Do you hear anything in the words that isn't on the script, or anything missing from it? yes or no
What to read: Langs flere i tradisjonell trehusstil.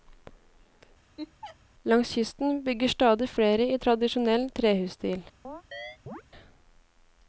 yes